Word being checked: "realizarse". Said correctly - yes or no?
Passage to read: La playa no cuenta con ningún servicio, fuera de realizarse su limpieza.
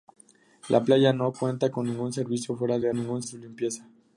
no